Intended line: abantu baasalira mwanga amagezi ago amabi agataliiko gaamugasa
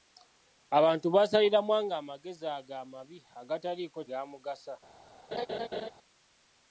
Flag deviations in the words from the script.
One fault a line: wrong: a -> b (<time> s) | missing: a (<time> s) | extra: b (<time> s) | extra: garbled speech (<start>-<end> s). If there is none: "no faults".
no faults